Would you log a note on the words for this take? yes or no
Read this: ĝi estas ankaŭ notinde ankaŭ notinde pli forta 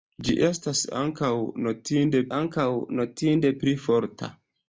no